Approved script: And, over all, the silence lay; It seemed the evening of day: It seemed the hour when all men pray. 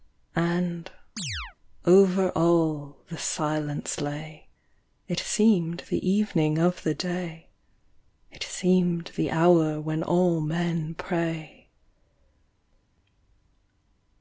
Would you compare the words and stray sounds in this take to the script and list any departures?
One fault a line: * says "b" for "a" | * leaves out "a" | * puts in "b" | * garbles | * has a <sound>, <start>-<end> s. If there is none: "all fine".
* has a chirp, 1.2-1.6 s
* puts in "the"